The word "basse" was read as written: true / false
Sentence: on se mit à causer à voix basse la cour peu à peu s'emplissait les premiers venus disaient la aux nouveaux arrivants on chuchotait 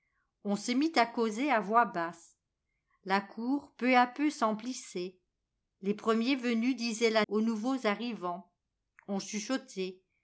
true